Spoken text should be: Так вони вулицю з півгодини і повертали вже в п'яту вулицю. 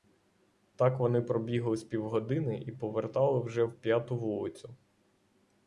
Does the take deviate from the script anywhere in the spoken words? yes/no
yes